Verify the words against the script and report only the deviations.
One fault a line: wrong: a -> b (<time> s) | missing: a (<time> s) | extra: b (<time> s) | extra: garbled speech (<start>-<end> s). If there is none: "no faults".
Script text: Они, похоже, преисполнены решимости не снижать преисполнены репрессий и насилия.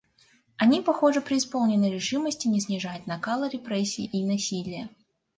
wrong: преисполнены -> накала (3.0 s)